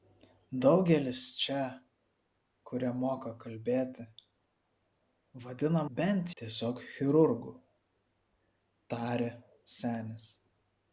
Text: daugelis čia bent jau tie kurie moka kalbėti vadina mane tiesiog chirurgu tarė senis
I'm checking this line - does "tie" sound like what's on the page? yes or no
no